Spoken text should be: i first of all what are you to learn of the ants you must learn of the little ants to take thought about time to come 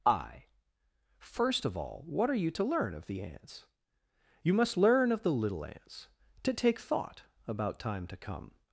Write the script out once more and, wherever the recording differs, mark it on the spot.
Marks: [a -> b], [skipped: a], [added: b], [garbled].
i first of all what are you to learn of the ants you must learn of the little ants to take thought about time to come